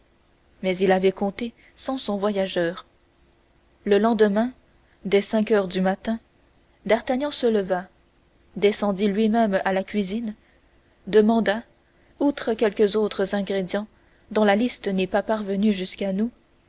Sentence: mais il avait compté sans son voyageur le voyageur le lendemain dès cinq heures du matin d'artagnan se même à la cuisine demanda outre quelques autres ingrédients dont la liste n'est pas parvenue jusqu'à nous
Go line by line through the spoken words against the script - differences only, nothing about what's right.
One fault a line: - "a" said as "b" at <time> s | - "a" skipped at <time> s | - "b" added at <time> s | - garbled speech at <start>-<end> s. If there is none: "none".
- "voyageur le" skipped at 4.0 s
- "leva descendit lui" added at 7.5 s